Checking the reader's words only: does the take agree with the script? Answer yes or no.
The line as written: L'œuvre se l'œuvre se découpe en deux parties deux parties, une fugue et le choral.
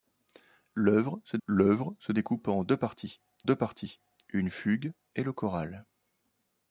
yes